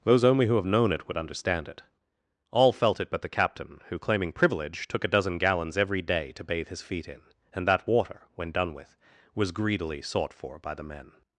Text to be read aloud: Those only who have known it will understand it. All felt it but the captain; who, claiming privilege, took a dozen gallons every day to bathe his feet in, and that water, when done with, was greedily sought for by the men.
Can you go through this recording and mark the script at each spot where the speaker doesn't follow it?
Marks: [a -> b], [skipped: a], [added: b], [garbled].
Those only who have known it [will -> would] understand it. All felt it but the captain; who, claiming privilege, took a dozen gallons every day to bathe his feet in, and that water, when done with, was greedily sought for by the men.